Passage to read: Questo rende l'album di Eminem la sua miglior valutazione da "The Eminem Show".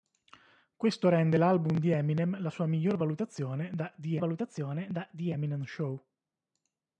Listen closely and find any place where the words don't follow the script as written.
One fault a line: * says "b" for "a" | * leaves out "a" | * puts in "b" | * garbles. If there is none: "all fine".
* puts in "valutazione da The"